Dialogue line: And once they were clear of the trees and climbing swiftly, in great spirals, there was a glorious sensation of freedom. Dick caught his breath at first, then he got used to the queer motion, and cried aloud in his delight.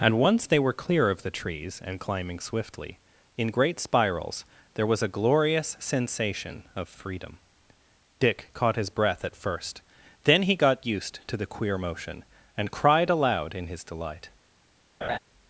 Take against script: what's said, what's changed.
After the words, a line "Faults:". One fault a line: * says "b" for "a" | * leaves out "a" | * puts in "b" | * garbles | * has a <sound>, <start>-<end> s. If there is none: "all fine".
And once they were clear of the trees and climbing swiftly, in great spirals, there was a glorious sensation of freedom. Dick caught his breath at first, then he got used to the queer motion, and cried aloud in his delight.
Faults:
* has a laugh, 15.0-15.2 s